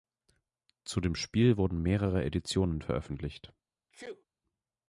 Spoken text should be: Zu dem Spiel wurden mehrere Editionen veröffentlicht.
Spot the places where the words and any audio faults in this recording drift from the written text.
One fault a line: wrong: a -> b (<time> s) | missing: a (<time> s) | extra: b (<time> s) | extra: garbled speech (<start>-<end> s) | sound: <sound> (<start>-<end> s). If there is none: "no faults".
sound: sneeze (3.9-4.2 s)